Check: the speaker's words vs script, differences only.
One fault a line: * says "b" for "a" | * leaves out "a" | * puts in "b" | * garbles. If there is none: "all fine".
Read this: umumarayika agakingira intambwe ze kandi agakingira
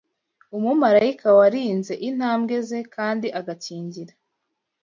* says "warinze" for "agakingira"